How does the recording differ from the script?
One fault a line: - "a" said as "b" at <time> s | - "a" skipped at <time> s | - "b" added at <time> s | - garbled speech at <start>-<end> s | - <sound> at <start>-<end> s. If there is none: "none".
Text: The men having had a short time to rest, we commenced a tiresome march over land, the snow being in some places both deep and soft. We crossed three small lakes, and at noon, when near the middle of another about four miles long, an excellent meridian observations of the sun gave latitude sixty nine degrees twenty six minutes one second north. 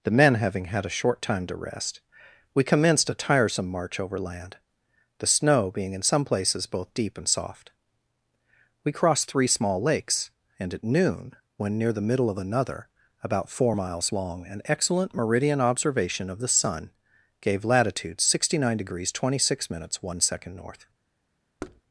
- "observations" said as "observation" at 15.6 s
- thud at 21.6-21.8 s